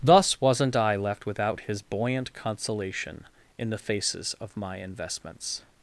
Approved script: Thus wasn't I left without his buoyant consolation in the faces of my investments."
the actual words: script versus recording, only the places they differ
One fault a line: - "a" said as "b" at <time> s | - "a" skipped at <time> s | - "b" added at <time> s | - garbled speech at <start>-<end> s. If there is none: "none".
none